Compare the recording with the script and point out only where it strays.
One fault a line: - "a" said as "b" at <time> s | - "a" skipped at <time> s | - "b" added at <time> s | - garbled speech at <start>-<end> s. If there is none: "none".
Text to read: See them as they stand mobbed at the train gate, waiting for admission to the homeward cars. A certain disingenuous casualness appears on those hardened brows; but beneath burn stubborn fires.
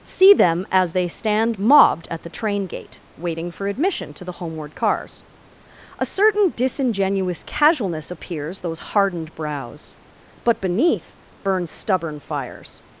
- "on" skipped at 8.6 s